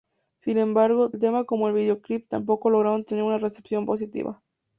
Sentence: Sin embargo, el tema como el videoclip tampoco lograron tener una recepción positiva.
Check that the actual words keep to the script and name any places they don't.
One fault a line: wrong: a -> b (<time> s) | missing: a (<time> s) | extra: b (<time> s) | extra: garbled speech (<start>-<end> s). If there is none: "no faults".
no faults